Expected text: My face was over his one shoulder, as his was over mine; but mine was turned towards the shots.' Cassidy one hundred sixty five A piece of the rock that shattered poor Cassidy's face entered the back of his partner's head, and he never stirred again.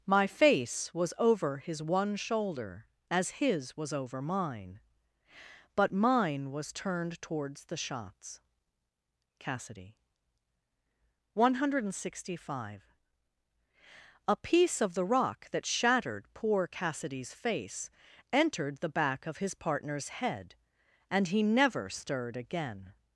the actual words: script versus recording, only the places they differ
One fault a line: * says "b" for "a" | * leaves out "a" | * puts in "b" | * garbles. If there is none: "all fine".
all fine